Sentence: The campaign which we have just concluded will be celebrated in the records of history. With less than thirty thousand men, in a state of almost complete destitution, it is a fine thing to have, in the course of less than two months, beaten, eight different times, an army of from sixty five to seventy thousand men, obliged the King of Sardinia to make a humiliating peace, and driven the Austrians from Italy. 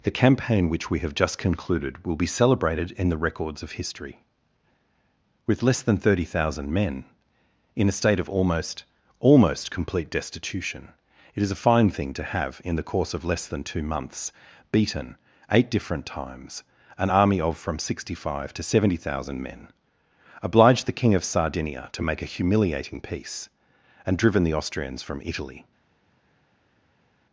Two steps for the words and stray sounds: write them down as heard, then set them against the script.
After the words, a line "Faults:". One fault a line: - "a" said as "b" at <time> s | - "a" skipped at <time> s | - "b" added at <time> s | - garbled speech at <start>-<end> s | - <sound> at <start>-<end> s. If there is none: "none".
The campaign which we have just concluded will be celebrated in the records of history. With less than thirty thousand men, in a state of almost almost complete destitution, it is a fine thing to have, in the course of less than two months, beaten, eight different times, an army of from sixty five to seventy thousand men, obliged the King of Sardinia to make a humiliating peace, and driven the Austrians from Italy.
Faults:
- "almost" added at 9.2 s